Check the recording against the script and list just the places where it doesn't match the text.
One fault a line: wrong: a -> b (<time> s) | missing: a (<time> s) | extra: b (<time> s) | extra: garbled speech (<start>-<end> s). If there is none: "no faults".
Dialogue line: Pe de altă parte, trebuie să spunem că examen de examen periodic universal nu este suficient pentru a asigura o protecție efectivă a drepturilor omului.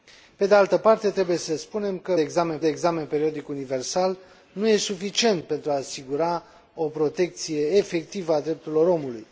no faults